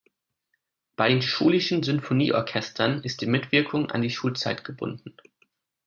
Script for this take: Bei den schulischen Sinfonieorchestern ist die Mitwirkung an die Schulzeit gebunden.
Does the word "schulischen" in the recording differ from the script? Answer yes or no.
no